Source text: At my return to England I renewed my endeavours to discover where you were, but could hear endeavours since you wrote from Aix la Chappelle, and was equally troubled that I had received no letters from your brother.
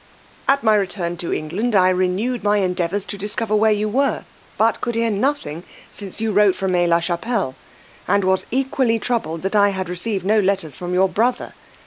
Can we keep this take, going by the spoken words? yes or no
no